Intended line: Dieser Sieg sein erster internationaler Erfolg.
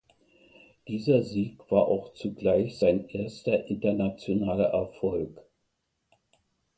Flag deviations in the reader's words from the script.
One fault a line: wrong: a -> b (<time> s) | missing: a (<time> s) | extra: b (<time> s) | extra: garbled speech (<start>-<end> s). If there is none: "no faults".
extra: war auch zugleich (1.7 s)